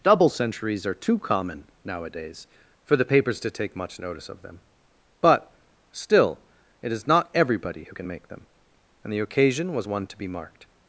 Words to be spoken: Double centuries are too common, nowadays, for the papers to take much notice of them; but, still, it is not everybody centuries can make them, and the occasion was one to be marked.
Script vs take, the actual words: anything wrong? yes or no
yes